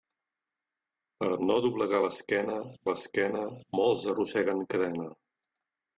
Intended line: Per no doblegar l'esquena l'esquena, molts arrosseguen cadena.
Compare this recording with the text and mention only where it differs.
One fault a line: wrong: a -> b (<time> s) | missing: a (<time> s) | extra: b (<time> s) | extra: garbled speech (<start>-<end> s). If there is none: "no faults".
no faults